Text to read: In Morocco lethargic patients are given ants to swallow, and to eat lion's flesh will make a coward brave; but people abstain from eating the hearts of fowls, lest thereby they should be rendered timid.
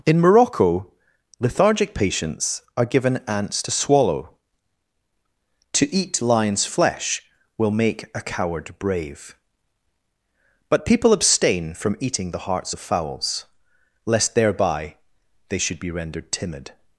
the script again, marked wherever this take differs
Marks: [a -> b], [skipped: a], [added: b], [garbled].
In Morocco lethargic patients are given ants to swallow, [skipped: and] to eat lion's flesh will make a coward brave; but people abstain from eating the hearts of fowls, lest thereby they should be rendered timid.